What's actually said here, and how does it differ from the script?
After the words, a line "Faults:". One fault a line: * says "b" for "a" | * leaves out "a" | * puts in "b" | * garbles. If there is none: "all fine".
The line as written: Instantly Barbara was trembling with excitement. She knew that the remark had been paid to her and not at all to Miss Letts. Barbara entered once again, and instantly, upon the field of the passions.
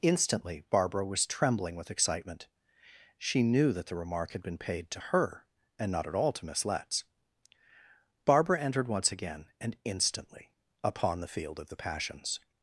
Instantly Barbara was trembling with excitement. She knew that the remark had been paid to her and not at all to Miss Letts. Barbara entered once again, and instantly, upon the field of the passions.
Faults:
all fine